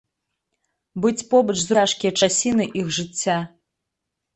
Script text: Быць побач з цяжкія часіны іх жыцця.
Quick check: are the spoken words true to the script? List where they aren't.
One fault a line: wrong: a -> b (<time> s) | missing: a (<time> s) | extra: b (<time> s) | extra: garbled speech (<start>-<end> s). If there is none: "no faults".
no faults